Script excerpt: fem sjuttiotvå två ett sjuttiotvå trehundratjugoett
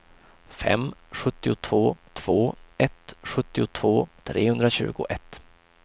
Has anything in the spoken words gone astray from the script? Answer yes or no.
no